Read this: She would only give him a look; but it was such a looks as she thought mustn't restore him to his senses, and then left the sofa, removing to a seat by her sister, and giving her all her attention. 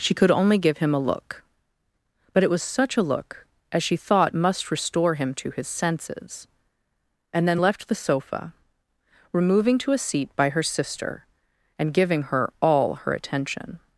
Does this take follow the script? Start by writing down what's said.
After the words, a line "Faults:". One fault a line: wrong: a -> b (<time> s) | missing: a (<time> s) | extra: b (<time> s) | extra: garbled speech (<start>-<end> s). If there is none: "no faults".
She could only give him a look; but it was such a look as she thought must restore him to his senses, and then left the sofa, removing to a seat by her sister, and giving her all her attention.
Faults:
wrong: would -> could (0.1 s)
wrong: looks -> look (3.0 s)
wrong: mustn't -> must (4.3 s)